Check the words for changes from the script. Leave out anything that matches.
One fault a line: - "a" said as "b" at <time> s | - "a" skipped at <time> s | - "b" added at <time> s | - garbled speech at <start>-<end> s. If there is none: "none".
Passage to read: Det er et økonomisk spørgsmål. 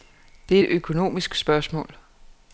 none